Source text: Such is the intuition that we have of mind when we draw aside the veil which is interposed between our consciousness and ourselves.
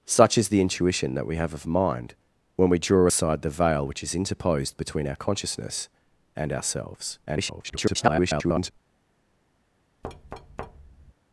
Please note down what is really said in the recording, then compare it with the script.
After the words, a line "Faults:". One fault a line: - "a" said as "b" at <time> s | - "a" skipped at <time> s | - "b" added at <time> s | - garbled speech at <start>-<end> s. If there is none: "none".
Such is the intuition that we have of mind when we draw aside the veil which is interposed between our consciousness and ourselves. [garbled]
Faults:
- garbled speech at 7.3-8.7 s